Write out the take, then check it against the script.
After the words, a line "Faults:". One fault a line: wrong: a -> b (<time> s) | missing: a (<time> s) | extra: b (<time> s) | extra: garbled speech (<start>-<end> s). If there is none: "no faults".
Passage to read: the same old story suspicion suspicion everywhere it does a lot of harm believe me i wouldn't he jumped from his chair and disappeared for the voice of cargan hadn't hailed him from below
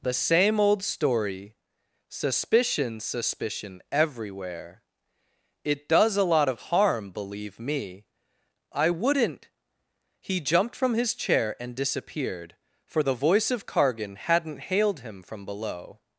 the same old story suspicion suspicion everywhere it does a lot of harm believe me i wouldn't he jumped from his chair and disappeared for the voice of cargan hadn't hailed him from below
Faults:
no faults